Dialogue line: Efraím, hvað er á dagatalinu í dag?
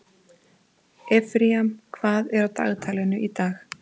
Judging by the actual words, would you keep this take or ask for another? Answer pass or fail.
pass